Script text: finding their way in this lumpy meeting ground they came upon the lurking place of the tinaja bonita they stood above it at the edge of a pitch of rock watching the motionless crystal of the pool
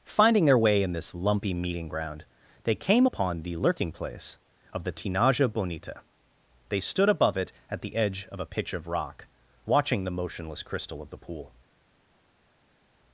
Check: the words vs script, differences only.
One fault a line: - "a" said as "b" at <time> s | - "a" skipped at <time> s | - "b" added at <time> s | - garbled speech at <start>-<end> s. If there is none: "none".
none